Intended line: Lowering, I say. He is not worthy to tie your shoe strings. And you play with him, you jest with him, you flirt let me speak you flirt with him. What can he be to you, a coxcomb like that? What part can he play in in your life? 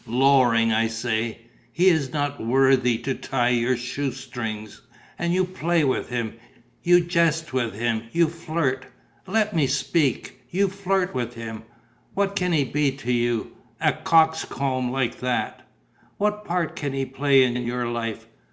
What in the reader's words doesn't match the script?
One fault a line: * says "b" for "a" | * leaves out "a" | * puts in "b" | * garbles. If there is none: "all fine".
all fine